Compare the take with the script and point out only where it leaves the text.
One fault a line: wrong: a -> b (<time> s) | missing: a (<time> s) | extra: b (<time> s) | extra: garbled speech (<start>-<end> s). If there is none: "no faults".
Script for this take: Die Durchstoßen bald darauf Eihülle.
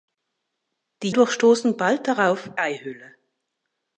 no faults